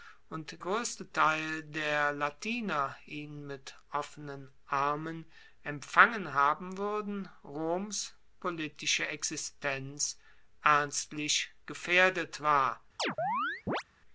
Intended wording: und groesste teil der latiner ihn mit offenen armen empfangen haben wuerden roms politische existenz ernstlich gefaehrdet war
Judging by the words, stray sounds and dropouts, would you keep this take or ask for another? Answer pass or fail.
fail